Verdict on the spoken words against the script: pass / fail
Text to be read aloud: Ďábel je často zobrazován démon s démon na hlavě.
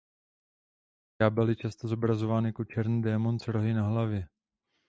fail